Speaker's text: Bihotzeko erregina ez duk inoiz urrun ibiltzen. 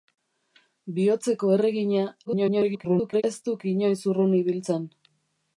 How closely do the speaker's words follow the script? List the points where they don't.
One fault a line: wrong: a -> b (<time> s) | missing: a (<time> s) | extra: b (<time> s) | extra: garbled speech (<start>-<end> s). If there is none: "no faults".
extra: garbled speech (2.2-3.2 s)